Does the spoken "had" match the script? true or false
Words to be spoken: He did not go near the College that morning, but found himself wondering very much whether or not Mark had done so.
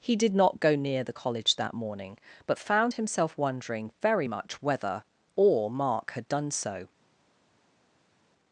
true